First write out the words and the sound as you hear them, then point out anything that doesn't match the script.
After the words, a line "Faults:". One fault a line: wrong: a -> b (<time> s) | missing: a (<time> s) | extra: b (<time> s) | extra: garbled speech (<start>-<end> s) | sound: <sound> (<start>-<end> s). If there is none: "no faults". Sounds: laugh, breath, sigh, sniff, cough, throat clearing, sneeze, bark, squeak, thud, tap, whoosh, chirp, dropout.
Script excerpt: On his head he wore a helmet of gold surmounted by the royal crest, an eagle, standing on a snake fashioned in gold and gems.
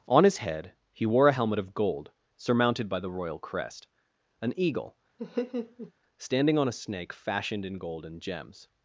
On his head he wore a helmet of gold surmounted by the royal crest, an eagle, standing on a snake fashioned in gold and gems.
Faults:
sound: laugh (5.2-5.9 s)